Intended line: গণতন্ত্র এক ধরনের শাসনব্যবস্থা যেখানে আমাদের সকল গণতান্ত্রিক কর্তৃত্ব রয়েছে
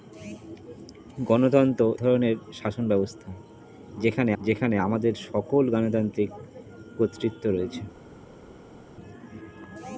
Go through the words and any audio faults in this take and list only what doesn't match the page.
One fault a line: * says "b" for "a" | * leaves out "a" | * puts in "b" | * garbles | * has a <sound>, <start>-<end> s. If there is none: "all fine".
* leaves out "এক"
* puts in "যেখানে"